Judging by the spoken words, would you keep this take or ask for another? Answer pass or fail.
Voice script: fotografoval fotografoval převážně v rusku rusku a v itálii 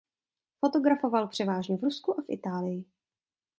fail